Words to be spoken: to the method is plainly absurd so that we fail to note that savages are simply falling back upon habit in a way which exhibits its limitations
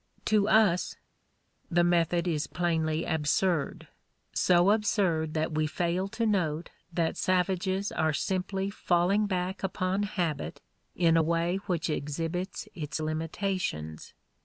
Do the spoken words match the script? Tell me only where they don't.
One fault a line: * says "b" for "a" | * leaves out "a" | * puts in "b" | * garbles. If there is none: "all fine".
* puts in "us"
* puts in "absurd"